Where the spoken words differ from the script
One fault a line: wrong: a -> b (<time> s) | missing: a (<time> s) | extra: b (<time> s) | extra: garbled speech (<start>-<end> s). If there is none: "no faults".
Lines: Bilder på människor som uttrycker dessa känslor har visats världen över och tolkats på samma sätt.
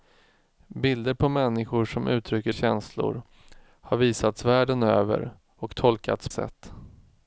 missing: dessa (2.5 s)
missing: på samma (6.3 s)